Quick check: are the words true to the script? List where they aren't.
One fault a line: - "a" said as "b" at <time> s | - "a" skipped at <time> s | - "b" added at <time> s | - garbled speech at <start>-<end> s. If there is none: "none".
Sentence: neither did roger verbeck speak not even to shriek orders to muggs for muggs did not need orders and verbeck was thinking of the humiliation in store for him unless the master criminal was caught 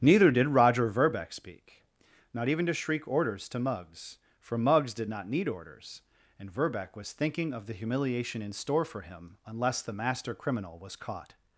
none